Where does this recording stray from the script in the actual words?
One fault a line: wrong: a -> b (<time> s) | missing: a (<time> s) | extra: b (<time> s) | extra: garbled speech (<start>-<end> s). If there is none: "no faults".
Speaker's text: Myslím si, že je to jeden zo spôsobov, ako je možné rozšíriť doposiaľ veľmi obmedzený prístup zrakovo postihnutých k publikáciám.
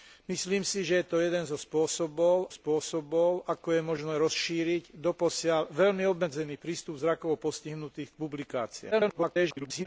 extra: spôsobov (2.5 s)
extra: garbled speech (8.9-9.9 s)